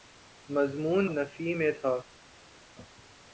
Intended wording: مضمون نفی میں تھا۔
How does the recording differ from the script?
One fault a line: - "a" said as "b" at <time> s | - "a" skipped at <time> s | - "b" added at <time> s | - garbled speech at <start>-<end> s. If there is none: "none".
none